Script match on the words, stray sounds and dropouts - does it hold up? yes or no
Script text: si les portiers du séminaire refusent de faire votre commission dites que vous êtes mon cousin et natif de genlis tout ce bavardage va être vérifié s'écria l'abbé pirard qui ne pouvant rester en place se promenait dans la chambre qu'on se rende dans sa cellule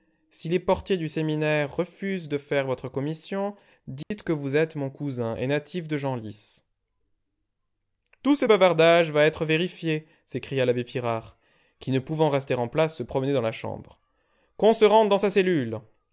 no